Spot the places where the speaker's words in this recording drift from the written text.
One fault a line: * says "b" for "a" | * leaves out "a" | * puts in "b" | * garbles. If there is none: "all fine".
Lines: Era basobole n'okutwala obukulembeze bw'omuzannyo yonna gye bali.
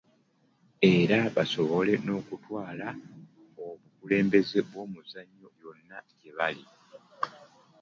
all fine